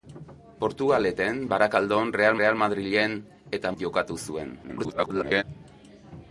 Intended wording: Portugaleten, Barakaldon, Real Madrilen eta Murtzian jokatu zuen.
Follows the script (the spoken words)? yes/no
no